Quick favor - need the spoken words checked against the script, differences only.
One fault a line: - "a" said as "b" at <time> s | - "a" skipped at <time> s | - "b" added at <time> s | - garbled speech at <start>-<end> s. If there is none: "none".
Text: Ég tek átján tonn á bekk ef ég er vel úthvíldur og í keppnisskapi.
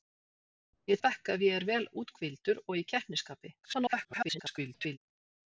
- "tek átján tonn" skipped at 1.0 s
- garbled speech at 3.6-5.0 s